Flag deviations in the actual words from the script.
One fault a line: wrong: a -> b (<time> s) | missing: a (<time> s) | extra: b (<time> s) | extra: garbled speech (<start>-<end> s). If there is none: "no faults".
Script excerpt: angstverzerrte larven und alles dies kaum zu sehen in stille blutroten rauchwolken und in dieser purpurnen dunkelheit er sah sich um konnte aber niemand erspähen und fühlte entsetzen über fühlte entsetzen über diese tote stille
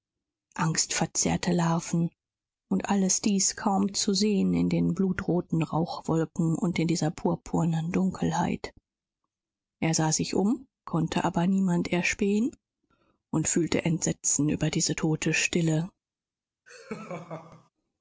wrong: stille -> den (4.7 s)
missing: fühlte entsetzen über (14.7 s)